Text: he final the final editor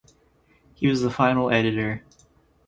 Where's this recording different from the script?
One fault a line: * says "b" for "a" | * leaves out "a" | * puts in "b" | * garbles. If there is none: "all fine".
* says "was" for "final"